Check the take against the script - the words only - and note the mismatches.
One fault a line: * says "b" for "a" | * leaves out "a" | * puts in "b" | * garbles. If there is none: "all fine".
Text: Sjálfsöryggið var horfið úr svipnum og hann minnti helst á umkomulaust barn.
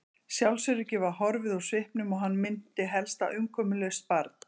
all fine